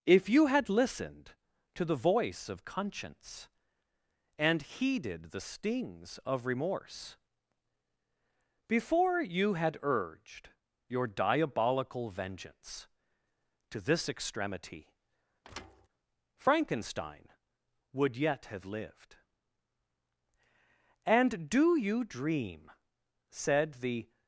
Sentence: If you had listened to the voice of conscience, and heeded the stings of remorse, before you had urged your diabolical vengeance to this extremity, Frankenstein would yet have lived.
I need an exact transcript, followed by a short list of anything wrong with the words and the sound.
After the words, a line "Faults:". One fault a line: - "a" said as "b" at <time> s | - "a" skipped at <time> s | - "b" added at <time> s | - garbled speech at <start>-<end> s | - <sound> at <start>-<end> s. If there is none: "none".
If you had listened to the voice of conscience, and heeded the stings of remorse, before you had urged your diabolical vengeance to this extremity, Frankenstein would yet have lived. "And do you dream?" said the
Faults:
- thud at 15.4-15.9 s
- "And do you dream said the" added at 21.0 s